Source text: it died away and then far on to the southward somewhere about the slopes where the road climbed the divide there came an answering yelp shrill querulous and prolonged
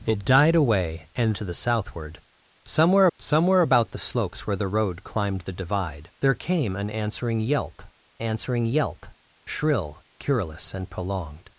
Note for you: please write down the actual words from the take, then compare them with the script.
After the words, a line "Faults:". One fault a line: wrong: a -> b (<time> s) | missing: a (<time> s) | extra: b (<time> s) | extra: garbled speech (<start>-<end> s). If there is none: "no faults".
it died away and to the southward somewhere somewhere about the slopes where the road climbed the divide there came an answering yelp answering yelp shrill querulous and prolonged
Faults:
missing: then far on (1.4 s)
extra: somewhere (3.2 s)
extra: answering yelp (8.2 s)